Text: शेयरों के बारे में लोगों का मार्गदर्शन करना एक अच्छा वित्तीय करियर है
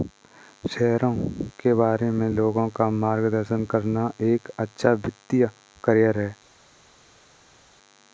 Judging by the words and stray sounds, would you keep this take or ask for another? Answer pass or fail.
pass